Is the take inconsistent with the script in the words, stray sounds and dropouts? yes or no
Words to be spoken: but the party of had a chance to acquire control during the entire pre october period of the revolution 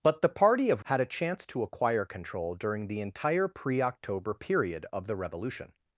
no